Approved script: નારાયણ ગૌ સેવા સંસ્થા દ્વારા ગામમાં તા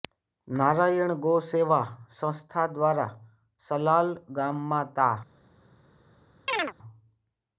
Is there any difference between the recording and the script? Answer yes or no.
yes